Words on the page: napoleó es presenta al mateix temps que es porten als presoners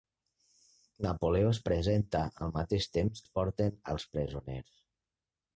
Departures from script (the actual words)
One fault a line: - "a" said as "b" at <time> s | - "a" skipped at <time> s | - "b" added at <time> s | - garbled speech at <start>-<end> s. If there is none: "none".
- "que" skipped at 3.2 s